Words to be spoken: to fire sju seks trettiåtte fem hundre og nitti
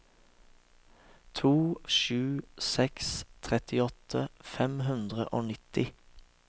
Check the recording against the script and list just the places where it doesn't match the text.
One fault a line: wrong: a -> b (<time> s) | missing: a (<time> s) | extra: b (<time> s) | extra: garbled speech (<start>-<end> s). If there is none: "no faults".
missing: fire (1.5 s)